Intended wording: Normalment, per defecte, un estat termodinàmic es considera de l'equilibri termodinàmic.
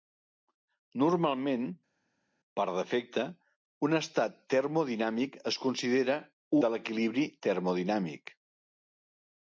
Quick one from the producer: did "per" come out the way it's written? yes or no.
yes